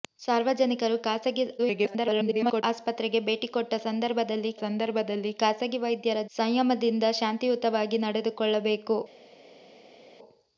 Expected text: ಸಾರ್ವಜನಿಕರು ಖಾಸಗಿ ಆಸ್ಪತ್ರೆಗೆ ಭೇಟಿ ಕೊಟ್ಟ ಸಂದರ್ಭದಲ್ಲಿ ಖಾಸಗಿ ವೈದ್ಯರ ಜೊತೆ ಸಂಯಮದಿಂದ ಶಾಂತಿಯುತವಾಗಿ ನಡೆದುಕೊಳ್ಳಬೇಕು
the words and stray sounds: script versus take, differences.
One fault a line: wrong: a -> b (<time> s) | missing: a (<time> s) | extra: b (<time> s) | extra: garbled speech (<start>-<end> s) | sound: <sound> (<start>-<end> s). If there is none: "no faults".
extra: garbled speech (1.6-2.6 s)
extra: ಸಂದರ್ಭದಲ್ಲಿ (4.6 s)
missing: ಜೊತೆ (6.2 s)